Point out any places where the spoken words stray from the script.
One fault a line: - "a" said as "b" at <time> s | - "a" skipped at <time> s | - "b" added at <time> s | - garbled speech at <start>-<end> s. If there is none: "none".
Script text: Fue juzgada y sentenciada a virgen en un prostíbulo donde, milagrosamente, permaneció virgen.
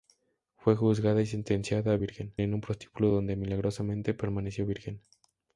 none